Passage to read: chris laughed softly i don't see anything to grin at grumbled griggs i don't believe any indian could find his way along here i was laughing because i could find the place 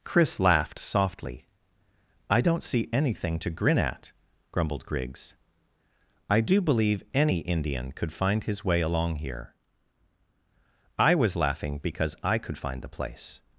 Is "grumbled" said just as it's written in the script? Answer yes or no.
yes